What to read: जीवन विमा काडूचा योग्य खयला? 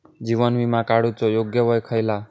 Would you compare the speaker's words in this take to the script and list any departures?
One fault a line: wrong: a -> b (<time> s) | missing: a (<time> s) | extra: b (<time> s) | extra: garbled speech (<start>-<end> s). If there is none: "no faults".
extra: वय (1.6 s)